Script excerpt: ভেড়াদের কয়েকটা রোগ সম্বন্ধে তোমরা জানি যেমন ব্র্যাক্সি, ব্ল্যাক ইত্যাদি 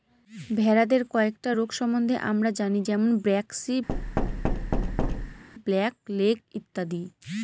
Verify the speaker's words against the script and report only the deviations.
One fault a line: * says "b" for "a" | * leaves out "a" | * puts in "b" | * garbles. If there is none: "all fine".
* says "আমরা" for "তোমরা"
* puts in "লেগ"